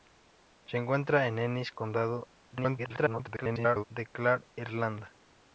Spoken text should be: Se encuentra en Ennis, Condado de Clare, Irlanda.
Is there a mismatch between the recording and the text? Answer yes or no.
yes